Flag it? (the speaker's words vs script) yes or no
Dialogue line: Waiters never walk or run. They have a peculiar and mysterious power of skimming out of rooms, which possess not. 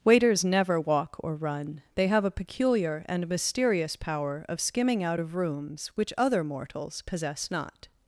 yes